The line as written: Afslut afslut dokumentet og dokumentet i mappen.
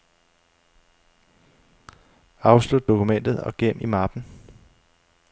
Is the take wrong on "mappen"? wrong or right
right